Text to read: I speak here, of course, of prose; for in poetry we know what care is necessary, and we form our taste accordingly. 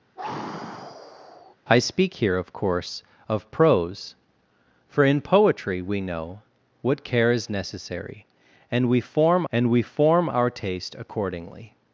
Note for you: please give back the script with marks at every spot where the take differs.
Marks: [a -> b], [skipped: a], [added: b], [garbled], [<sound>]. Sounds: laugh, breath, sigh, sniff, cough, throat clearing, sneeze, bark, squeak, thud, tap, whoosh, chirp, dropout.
[sigh] I speak here, of course, of prose; for in poetry we know what care is necessary, and we form [added: and we form] our taste accordingly.